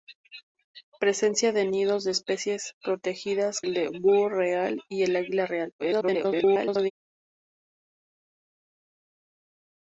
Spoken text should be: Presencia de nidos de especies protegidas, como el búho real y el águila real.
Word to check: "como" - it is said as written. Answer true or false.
false